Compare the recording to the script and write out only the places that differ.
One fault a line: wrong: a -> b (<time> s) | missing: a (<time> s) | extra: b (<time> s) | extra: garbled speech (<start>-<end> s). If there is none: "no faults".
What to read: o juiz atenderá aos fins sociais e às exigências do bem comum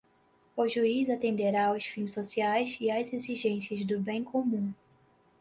no faults